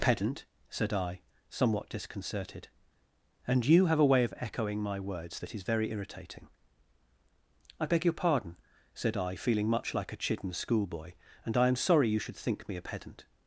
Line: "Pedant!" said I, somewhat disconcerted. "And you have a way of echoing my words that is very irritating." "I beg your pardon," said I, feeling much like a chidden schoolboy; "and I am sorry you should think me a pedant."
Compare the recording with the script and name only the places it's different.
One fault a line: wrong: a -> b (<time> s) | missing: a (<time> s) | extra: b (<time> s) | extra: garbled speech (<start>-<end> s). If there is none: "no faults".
no faults